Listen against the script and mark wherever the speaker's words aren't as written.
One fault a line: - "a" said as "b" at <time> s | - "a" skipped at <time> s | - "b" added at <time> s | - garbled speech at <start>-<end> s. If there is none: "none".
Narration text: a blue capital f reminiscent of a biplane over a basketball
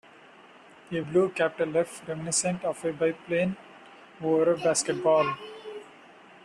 none